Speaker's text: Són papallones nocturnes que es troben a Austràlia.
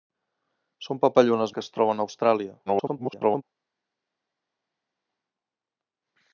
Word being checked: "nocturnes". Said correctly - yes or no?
no